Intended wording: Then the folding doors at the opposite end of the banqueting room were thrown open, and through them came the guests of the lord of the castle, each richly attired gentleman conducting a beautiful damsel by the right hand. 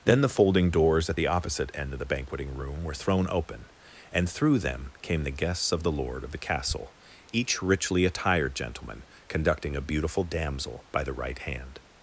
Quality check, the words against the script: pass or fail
pass